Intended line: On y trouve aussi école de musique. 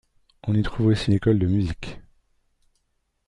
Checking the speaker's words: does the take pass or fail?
pass